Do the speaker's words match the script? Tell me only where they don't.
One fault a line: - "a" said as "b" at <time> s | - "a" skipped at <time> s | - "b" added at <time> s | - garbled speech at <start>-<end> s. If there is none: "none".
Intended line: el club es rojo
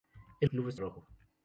none